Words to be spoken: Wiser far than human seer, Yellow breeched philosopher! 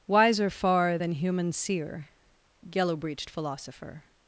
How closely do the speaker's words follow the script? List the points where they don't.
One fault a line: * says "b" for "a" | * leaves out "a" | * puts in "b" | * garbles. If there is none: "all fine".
all fine